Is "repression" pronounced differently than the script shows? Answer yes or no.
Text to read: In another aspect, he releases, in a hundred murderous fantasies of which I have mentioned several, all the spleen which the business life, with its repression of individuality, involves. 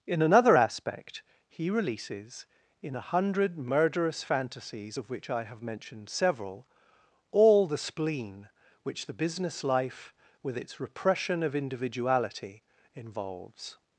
no